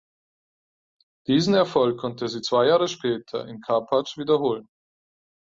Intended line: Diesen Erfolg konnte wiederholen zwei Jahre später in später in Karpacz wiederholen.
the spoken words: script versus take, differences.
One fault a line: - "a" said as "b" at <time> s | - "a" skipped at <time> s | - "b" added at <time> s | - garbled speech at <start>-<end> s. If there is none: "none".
- "wiederholen" said as "sie" at 2.3 s
- "später in" skipped at 3.6 s